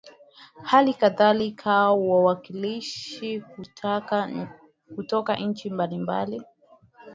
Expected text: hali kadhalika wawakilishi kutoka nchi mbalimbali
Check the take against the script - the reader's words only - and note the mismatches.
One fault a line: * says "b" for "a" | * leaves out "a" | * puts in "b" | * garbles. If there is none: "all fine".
all fine